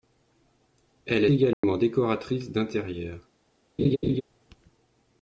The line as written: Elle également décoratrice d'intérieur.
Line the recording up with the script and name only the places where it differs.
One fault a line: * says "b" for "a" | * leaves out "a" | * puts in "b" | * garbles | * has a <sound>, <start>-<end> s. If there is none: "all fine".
* has a dropout, 1.5-1.6 s
* has a laugh, 3.8-4.2 s